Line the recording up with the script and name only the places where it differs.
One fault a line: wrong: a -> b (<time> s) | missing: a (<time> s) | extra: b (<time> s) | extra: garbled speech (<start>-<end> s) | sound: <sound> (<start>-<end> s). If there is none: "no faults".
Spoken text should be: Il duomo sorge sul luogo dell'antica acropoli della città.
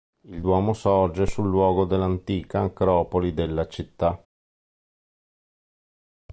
no faults